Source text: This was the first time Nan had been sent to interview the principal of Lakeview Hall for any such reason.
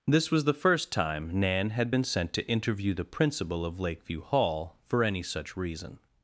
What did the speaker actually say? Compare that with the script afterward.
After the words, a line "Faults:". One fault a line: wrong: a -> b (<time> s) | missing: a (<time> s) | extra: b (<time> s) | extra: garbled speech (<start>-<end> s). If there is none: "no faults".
This was the first time Nan had been sent to interview the principal of Lakeview Hall for any such reason.
Faults:
no faults